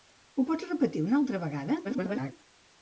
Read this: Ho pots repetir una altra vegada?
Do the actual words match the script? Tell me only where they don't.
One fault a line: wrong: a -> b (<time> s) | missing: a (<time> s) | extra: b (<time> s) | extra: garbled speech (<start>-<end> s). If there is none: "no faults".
extra: garbled speech (1.8-2.3 s)